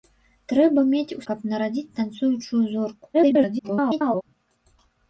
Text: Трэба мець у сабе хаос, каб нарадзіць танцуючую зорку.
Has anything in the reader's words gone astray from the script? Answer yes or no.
yes